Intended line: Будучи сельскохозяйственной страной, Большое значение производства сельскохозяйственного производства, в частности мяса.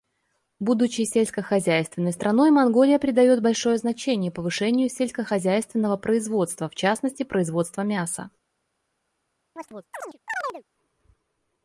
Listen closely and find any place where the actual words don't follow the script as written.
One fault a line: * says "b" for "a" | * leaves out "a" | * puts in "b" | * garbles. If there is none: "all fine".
* puts in "Монголия придает"
* says "повышению" for "производства"
* puts in "производства"